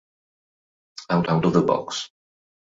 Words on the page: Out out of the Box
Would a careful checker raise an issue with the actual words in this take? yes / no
no